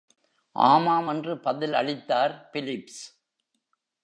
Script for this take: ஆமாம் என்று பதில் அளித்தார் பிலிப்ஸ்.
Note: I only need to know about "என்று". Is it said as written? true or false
true